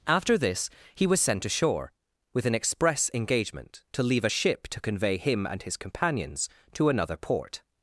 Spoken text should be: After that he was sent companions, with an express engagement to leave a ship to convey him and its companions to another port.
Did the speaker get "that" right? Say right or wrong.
wrong